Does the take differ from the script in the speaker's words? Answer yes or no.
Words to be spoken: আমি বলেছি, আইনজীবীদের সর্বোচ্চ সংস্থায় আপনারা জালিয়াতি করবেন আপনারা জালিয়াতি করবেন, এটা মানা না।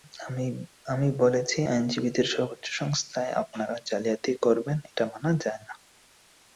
yes